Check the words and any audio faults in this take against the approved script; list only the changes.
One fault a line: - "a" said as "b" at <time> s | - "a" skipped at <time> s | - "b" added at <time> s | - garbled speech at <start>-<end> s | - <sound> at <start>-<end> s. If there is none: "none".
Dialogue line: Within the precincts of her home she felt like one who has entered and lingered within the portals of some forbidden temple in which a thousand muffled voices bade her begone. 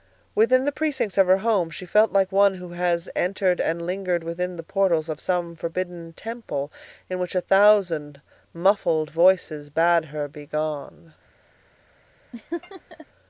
- laugh at 12.3-13.1 s